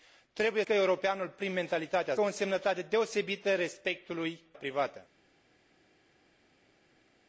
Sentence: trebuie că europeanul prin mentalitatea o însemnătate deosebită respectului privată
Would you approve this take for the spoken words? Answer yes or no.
yes